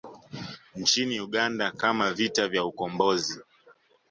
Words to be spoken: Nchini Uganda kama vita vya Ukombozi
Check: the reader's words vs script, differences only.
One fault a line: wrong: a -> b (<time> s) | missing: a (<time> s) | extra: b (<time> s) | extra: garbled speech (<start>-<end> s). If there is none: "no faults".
no faults